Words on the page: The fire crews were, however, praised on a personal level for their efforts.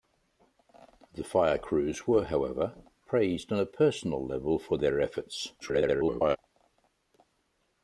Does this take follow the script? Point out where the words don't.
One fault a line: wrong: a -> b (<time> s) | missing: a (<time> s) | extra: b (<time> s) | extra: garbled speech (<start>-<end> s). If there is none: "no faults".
extra: garbled speech (5.6-6.4 s)